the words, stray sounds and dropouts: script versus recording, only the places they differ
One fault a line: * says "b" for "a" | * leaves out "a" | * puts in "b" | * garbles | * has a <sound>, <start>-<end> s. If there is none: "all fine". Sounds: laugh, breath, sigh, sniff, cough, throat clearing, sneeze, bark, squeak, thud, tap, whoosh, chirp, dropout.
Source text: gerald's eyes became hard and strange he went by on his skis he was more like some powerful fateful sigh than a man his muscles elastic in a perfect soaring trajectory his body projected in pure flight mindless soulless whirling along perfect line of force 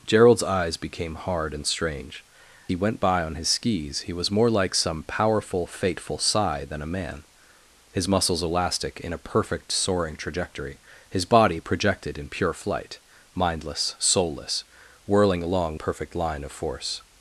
all fine